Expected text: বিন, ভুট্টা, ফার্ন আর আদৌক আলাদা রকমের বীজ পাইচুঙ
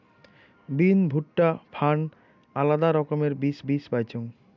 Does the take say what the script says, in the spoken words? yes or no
no